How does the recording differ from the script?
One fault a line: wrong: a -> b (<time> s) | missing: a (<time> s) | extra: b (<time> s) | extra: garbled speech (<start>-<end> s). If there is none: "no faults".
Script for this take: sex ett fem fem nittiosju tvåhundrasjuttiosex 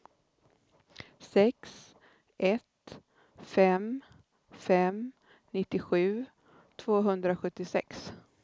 no faults